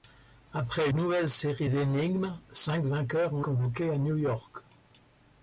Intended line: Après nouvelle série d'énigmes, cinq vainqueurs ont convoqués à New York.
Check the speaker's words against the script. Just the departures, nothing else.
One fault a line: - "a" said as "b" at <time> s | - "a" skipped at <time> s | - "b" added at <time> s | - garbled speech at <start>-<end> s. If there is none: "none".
none